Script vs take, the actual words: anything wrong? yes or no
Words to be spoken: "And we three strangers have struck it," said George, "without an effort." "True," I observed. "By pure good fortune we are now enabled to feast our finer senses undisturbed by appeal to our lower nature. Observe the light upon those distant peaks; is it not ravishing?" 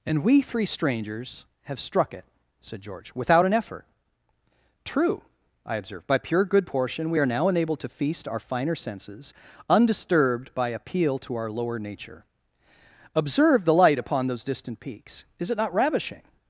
yes